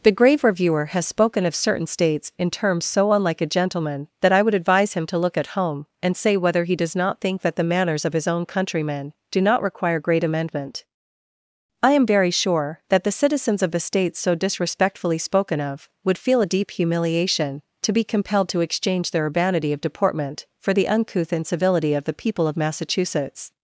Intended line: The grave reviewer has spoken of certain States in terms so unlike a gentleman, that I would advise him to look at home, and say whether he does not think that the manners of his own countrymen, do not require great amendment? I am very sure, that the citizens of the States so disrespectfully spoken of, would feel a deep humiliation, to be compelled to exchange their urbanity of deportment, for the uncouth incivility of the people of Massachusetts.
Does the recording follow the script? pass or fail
pass